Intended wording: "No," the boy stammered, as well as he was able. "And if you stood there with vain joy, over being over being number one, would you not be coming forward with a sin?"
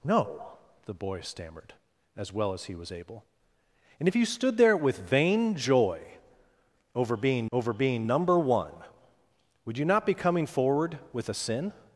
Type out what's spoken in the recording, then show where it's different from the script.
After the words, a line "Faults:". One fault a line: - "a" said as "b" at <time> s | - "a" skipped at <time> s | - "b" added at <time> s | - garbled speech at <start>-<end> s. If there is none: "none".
"No," the boy stammered, as well as he was able. "And if you stood there with vain joy, over being over being number one, would you not be coming forward with a sin?"
Faults:
none